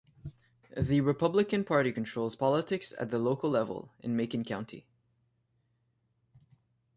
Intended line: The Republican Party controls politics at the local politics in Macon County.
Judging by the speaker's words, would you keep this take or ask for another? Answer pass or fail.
fail